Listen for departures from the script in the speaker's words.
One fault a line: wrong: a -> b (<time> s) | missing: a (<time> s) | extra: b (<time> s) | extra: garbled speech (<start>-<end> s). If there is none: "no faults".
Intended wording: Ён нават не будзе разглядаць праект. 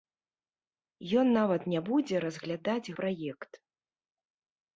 no faults